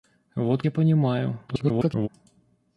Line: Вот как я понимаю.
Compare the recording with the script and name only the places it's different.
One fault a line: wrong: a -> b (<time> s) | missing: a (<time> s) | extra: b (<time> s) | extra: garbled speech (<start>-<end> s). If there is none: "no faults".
missing: как (0.6 s)
extra: garbled speech (1.5-2.1 s)